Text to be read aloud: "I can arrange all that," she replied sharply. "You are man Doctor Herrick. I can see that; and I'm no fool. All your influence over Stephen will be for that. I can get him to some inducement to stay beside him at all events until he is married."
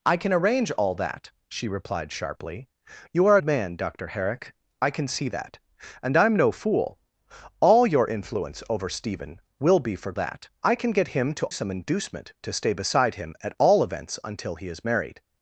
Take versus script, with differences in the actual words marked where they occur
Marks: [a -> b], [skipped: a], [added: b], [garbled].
"I can arrange all that," she replied sharply. "You are man Doctor Herrick. I can see that; and I'm no fool. All your influence over Stephen will be for that. I can get him to some inducement to stay beside him at all events until he is married."